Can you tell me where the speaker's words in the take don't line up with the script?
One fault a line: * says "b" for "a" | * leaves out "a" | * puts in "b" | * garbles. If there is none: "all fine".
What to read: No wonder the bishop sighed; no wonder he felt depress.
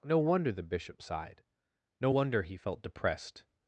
* says "depressed" for "depress"